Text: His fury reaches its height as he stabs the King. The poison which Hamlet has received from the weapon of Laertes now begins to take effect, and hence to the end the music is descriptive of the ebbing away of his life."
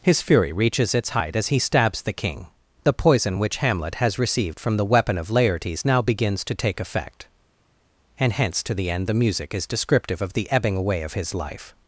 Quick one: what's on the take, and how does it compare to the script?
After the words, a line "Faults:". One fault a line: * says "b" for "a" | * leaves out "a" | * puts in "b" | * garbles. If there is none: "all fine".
His fury reaches its height as he stabs the King. The poison which Hamlet has received from the weapon of Laertes now begins to take effect, and hence to the end the music is descriptive of the ebbing away of his life."
Faults:
all fine